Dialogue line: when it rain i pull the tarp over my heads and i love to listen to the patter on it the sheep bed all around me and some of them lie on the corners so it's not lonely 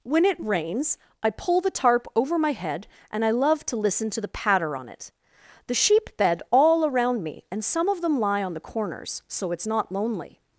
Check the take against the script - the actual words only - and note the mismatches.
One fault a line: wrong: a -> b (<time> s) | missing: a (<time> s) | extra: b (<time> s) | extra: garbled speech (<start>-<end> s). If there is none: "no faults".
wrong: rain -> rains (0.4 s)
wrong: heads -> head (2.5 s)